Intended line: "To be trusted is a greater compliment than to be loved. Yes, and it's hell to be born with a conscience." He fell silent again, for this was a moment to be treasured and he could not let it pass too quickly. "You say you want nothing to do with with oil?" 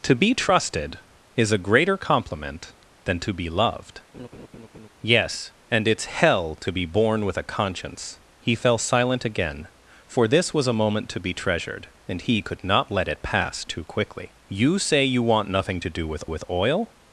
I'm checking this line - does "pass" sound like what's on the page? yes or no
yes